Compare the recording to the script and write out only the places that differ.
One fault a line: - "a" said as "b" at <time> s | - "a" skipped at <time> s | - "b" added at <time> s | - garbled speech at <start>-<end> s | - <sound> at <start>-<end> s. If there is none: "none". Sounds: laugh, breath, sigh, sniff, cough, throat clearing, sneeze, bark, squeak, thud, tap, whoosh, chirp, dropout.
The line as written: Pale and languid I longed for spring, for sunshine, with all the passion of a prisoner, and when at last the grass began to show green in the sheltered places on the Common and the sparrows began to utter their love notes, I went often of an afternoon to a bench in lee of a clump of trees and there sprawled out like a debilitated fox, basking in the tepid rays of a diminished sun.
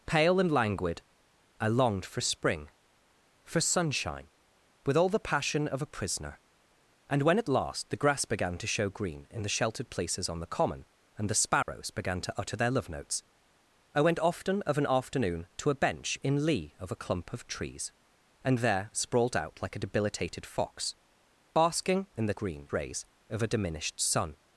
- dropout at 11.6-11.7 s
- "tepid" said as "green" at 22.3 s